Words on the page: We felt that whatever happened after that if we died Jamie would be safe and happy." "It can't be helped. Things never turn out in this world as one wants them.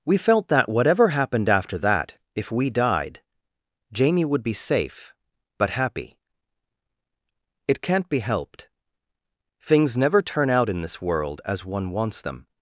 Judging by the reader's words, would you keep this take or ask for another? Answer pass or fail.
fail